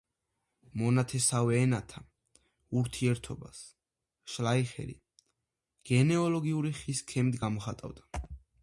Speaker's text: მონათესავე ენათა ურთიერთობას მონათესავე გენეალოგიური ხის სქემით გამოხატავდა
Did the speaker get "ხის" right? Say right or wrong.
right